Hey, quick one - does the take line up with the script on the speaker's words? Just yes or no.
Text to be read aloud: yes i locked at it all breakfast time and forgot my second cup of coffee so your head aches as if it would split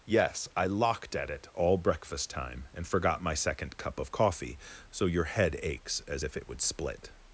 yes